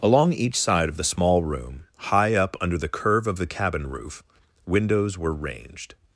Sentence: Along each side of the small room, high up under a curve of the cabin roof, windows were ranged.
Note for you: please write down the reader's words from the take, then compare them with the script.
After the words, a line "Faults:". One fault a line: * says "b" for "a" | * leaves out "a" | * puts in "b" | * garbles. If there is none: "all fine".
Along each side of the small room, high up under the curve of the cabin roof, windows were ranged.
Faults:
* says "the" for "a"